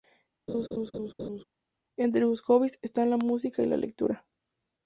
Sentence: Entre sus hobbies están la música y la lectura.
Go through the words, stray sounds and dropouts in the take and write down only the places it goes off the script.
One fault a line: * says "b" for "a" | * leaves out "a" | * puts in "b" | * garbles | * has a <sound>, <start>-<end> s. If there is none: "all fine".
* has a laugh, 0.5-1.4 s